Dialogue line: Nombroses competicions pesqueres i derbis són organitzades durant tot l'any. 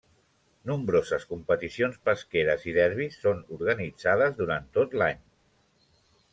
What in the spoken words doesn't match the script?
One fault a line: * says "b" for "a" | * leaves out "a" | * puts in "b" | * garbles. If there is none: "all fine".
all fine